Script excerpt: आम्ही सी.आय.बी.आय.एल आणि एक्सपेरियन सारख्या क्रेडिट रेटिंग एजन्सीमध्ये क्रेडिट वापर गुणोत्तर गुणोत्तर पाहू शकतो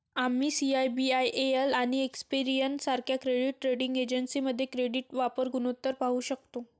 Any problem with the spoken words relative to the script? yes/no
yes